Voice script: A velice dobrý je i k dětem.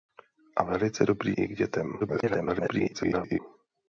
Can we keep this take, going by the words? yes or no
no